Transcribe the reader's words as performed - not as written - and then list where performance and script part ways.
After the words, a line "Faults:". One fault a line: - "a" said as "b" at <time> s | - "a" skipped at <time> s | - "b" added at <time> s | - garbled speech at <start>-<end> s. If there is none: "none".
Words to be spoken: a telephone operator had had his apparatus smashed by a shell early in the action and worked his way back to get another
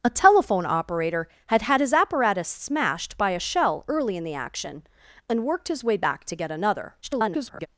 a telephone operator had had his apparatus smashed by a shell early in the action and worked his way back to get another [garbled]
Faults:
- garbled speech at 7.0-7.7 s